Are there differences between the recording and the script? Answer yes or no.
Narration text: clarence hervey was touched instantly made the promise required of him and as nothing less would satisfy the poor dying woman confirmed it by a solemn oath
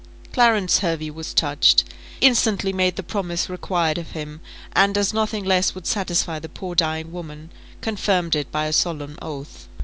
no